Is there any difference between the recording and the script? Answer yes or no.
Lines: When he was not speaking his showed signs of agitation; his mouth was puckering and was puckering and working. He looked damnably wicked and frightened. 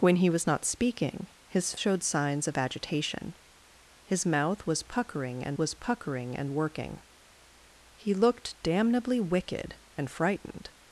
no